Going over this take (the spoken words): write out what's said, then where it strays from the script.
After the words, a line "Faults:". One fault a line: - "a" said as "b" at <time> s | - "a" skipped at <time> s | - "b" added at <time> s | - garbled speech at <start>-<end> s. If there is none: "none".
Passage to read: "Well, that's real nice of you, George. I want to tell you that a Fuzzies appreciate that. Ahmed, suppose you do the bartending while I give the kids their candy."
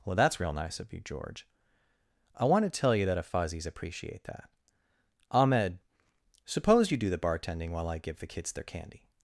"Well, that's real nice of you, George. I want to tell you that a Fuzzies appreciate that. Ahmed, suppose you do the bartending while I give the kids their candy."
Faults:
none